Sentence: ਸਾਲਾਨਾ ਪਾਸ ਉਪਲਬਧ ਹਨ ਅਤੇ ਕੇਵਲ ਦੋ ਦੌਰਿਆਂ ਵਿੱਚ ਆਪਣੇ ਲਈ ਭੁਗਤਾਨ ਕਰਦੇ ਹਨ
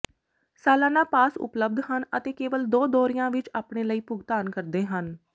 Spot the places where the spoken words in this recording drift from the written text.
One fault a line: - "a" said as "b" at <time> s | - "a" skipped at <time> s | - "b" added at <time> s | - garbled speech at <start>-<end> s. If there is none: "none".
none